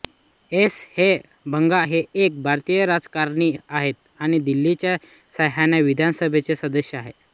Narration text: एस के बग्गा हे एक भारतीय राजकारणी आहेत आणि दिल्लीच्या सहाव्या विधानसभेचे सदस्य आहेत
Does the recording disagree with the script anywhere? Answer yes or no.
no